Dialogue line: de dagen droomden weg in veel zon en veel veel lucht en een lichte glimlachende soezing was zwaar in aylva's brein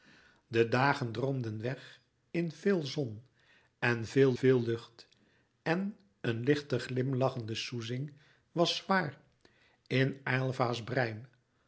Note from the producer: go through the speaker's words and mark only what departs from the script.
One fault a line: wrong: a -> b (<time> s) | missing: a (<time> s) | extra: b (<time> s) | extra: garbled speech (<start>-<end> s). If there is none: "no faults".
no faults